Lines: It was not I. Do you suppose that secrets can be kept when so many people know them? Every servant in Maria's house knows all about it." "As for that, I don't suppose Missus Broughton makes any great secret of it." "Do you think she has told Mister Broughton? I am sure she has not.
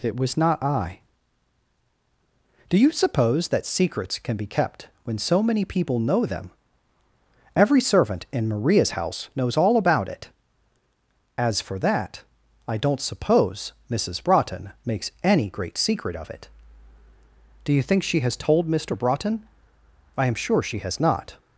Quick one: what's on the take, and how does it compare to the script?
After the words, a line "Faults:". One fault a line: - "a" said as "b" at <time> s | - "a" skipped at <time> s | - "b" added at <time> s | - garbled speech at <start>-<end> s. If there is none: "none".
It was not I. Do you suppose that secrets can be kept when so many people know them? Every servant in Maria's house knows all about it." "As for that, I don't suppose Missus Broughton makes any great secret of it." "Do you think she has told Mister Broughton? I am sure she has not.
Faults:
none